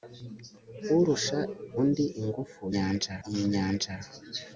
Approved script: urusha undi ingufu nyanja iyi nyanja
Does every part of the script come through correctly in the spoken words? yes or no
yes